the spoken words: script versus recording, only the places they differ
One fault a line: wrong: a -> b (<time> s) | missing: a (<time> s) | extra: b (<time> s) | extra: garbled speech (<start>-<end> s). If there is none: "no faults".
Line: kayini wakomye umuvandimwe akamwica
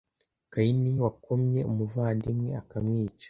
no faults